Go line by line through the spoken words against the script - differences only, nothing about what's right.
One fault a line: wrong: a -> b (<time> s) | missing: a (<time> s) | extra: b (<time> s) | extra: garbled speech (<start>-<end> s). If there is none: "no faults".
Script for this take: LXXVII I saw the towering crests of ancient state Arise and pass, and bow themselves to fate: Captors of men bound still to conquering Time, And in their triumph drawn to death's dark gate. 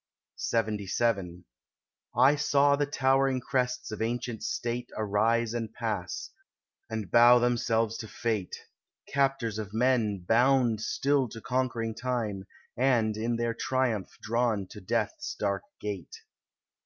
no faults